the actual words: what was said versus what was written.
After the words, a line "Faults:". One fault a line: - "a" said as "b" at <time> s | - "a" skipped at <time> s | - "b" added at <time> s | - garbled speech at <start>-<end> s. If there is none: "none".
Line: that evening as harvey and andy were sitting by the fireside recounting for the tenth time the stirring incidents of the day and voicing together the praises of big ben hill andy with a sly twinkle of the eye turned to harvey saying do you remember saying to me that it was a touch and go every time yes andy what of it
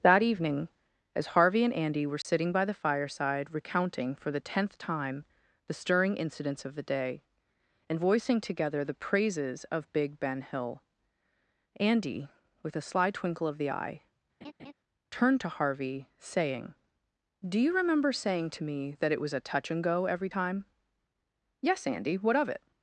that evening as harvey and andy were sitting by the fireside recounting for the tenth time the stirring incidents of the day and voicing together the praises of big ben hill andy with a sly twinkle of the eye turned to harvey saying do you remember saying to me that it was a touch and go every time yes andy what of it
Faults:
none